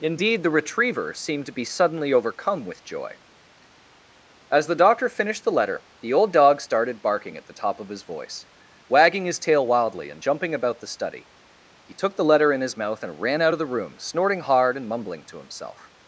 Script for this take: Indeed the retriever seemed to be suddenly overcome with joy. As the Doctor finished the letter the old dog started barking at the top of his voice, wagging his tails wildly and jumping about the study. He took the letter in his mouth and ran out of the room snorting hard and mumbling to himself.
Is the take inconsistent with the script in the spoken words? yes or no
yes